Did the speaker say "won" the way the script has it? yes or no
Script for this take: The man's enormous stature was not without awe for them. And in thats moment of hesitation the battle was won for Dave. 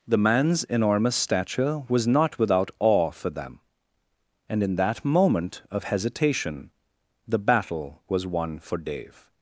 yes